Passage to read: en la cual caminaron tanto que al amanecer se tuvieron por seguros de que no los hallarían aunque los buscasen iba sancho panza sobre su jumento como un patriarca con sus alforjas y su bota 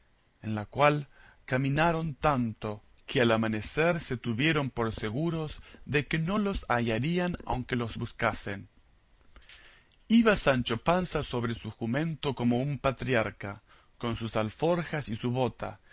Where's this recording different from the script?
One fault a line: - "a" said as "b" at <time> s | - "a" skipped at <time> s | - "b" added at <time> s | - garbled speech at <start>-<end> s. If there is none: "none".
none